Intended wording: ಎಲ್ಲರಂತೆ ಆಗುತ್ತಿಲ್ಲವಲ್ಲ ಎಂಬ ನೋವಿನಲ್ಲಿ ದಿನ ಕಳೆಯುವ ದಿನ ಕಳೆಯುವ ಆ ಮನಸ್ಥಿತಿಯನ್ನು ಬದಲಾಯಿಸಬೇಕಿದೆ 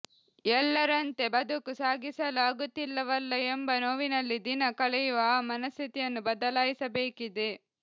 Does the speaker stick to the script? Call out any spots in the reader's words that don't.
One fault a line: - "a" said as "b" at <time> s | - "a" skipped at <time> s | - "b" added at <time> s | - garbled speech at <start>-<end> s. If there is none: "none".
- "ಬದುಕು ಸಾಗಿಸಲು" added at 1.3 s
- "ದಿನ ಕಳೆಯುವ" skipped at 5.3 s